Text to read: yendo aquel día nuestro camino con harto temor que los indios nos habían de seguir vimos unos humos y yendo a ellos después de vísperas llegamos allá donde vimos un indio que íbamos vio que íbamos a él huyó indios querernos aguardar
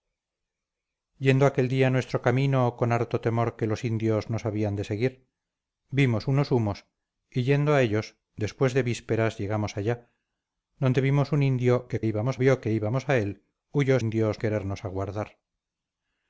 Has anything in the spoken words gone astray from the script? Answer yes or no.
no